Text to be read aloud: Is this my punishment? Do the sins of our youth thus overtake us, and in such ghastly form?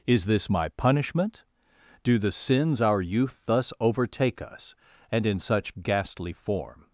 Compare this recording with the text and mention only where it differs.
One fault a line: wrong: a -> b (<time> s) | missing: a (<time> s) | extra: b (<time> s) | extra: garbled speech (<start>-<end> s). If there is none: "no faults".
missing: of (2.8 s)